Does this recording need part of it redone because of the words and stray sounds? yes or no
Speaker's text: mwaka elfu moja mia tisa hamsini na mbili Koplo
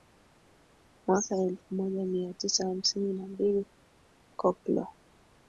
no